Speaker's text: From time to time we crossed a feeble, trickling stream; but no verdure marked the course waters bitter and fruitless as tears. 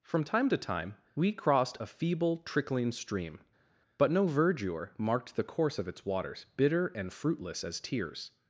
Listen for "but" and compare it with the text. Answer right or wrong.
right